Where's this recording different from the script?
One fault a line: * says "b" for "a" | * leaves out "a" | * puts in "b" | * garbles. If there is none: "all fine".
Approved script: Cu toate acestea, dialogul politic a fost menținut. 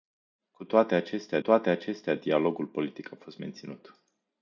* puts in "toate acestea"